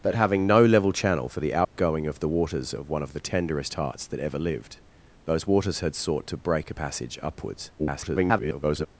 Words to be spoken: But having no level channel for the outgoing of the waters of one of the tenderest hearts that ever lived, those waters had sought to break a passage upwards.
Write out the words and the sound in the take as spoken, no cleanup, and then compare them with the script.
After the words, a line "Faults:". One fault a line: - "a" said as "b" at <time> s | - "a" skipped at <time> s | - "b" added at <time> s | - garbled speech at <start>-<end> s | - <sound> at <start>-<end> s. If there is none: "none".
But having no level channel for the outgoing of the waters of one of the tenderest hearts that ever lived, those waters had sought to break a passage upwards. [garbled]
Faults:
- dropout at 1.6-1.7 s
- garbled speech at 7.8-8.9 s